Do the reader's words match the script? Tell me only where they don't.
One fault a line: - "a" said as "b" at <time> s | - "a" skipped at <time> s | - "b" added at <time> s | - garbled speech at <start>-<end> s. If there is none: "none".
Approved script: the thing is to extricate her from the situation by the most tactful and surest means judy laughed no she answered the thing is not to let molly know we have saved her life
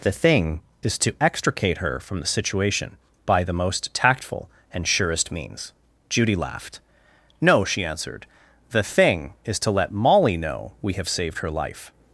- "not" skipped at 9.6 s